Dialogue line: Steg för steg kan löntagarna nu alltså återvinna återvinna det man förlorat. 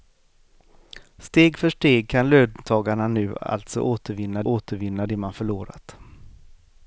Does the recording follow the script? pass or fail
pass